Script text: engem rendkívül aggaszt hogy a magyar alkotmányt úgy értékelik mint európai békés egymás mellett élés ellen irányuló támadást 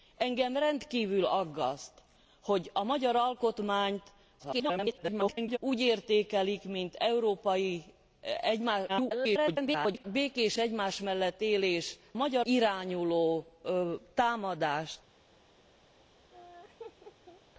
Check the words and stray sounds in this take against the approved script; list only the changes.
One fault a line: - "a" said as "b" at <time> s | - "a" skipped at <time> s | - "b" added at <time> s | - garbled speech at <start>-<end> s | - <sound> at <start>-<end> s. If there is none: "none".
- garbled speech at 4.4-5.6 s
- garbled speech at 8.9-10.0 s
- "ellen" said as "magyar" at 12.1 s
- laugh at 16.3-17.4 s